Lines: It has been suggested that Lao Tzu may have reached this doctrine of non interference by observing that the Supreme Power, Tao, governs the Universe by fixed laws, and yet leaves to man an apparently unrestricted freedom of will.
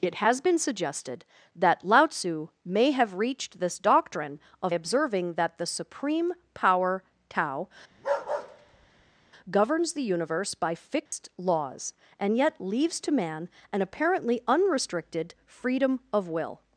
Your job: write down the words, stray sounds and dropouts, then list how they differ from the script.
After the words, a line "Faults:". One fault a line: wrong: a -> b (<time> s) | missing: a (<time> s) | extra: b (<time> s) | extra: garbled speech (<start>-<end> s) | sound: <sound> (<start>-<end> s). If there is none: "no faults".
It has been suggested that Lao Tzu may have reached this doctrine of observing that the Supreme Power, Tao, governs the Universe by fixed laws, and yet leaves to man an apparently unrestricted freedom of will.
Faults:
missing: non interference by (4.7 s)
sound: bark (7.9-9.3 s)
sound: dropout (11.1-11.1 s)